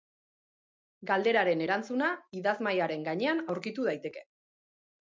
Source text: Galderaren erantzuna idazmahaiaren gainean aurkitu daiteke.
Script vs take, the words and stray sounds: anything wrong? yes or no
no